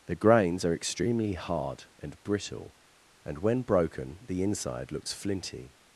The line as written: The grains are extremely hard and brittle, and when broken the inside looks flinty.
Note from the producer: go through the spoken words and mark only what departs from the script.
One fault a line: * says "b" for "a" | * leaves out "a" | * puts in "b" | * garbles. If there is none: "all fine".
all fine